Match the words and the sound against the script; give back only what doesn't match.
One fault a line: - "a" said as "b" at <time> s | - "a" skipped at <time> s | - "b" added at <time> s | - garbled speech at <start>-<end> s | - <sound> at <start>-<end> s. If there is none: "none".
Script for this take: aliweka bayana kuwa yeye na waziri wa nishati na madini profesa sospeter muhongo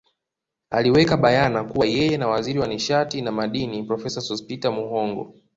none